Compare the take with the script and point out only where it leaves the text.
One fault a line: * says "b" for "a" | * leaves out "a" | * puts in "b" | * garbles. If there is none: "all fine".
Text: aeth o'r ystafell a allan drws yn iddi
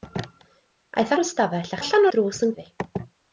all fine